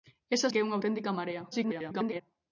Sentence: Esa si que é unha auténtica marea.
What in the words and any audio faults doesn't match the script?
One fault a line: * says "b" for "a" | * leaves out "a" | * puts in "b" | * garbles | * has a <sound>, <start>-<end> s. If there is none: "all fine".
* leaves out "si"
* garbles